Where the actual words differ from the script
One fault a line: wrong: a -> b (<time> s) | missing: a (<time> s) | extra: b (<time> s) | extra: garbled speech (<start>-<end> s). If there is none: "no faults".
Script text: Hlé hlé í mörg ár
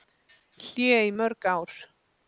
missing: hlé (0.9 s)